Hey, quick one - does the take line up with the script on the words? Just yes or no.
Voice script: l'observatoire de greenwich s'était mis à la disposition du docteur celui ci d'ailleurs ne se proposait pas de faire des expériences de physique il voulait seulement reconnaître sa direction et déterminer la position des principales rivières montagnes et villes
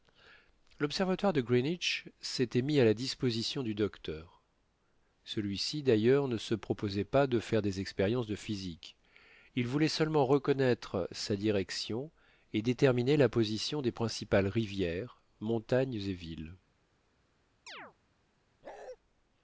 yes